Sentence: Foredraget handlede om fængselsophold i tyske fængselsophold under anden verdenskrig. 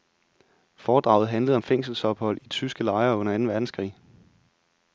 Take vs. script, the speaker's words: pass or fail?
fail